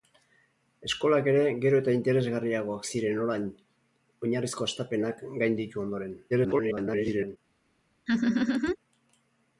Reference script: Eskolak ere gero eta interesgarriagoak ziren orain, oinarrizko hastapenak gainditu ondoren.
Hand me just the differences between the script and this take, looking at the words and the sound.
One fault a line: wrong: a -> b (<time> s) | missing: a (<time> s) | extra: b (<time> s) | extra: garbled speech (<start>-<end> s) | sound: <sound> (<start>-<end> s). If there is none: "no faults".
extra: garbled speech (6.3-7.4 s)
sound: laugh (8.1-8.8 s)